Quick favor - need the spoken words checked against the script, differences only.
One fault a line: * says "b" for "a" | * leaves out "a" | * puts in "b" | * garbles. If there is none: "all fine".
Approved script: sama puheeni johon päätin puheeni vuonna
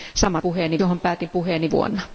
all fine